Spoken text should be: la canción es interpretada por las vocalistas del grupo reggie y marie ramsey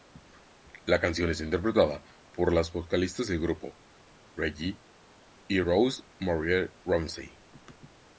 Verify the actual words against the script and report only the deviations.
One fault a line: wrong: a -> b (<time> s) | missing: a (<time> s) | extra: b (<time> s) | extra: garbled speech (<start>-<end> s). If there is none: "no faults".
extra: rose (5.6 s)